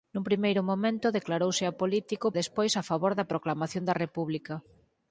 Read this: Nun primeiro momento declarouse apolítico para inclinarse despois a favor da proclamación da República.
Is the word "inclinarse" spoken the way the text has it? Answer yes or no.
no